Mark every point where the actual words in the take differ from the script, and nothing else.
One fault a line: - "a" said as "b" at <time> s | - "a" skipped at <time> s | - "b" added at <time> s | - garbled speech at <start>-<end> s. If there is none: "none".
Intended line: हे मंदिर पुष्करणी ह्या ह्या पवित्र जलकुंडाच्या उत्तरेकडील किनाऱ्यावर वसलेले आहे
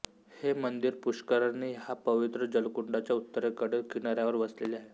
- "ह्या" skipped at 1.9 s